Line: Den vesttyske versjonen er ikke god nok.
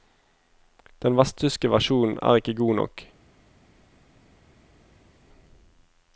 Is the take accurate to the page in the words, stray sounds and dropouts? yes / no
yes